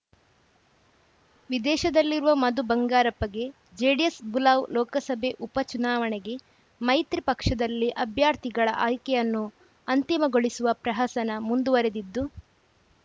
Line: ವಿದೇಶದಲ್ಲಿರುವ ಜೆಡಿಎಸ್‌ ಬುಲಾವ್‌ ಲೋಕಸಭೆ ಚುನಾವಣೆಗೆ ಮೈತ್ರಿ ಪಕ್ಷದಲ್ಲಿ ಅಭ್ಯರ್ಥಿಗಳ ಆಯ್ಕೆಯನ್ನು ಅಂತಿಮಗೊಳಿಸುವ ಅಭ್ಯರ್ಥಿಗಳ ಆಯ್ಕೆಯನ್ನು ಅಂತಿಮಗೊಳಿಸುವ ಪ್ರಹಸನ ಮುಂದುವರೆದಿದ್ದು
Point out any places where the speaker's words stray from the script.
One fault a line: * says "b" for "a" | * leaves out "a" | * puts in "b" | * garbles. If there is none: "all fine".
* puts in "ಮಧು ಬಂಗಾರಪ್ಪಗೆ"
* puts in "ಉಪ"
* leaves out "ಅಭ್ಯರ್ಥಿಗಳ ಆಯ್ಕೆಯನ್ನು ಅಂತಿಮಗೊಳಿಸುವ"